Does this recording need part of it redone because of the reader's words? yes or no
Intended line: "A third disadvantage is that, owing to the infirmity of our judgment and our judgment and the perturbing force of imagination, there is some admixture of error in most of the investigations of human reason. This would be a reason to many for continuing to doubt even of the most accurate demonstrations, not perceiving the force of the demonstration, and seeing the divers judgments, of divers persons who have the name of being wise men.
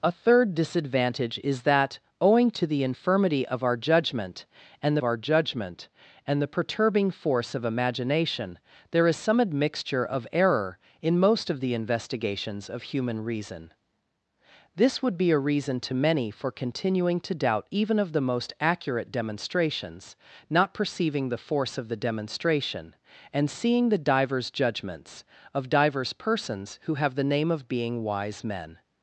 no